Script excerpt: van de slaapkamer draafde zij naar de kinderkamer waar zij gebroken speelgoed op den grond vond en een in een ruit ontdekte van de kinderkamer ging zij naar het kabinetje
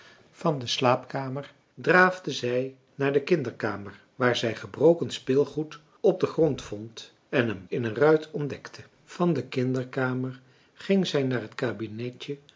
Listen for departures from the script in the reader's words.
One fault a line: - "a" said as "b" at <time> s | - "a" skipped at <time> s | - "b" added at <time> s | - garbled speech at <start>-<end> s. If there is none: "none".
none